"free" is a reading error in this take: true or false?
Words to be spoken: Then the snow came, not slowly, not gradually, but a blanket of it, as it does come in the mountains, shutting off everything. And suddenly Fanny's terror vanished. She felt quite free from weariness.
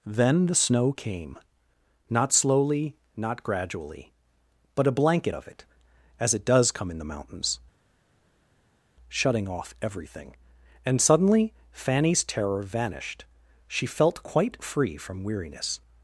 false